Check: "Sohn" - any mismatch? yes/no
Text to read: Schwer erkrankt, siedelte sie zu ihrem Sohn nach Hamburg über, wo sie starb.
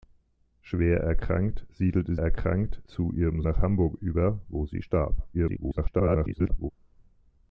yes